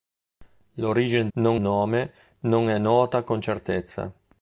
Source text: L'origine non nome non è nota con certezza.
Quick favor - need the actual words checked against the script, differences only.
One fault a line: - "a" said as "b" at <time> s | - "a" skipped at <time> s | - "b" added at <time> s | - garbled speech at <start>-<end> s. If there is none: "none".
none